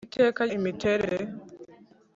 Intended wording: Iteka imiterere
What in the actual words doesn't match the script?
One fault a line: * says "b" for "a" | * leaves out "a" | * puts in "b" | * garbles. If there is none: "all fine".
all fine